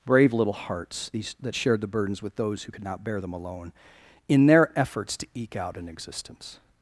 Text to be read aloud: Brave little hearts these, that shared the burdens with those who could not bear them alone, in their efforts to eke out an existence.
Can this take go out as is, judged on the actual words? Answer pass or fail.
pass